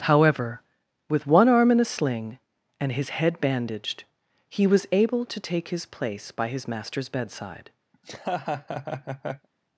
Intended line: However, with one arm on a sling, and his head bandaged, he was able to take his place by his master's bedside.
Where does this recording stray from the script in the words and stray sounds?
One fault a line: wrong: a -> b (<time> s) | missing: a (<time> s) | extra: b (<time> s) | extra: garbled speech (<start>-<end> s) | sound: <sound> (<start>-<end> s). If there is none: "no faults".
wrong: on -> in (1.7 s)
sound: laugh (7.9-9.5 s)